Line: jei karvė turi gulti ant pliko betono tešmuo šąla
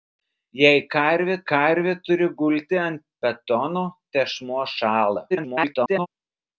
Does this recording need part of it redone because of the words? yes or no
yes